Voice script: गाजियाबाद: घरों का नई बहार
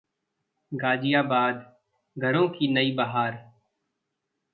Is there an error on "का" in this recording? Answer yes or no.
yes